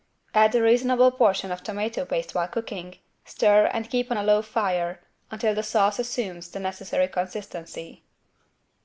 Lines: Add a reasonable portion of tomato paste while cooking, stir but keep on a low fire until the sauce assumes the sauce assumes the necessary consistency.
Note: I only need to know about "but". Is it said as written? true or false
false